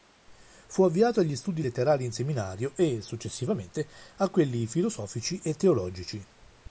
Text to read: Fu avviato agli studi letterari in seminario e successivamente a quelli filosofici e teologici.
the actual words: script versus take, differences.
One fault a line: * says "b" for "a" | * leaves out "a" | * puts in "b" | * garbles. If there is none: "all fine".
all fine